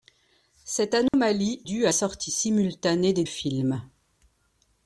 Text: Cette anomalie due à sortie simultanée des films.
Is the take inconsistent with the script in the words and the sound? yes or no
yes